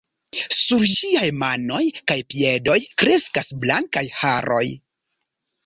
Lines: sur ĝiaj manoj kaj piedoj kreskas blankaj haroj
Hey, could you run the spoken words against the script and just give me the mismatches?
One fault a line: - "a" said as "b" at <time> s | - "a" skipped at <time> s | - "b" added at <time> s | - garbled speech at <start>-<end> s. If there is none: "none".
none